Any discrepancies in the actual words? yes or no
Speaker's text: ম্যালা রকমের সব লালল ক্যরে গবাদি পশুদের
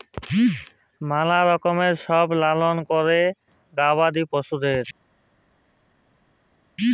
no